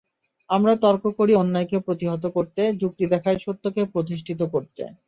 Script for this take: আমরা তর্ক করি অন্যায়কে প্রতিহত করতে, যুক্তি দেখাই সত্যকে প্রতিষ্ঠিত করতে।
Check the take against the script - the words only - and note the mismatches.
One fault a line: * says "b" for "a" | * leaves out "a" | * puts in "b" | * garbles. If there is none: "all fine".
all fine